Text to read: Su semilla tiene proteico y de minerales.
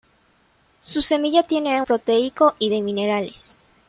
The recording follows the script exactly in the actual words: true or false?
true